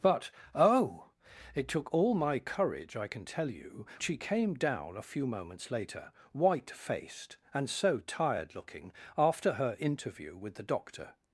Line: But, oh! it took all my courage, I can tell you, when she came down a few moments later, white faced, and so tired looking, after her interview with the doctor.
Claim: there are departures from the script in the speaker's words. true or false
true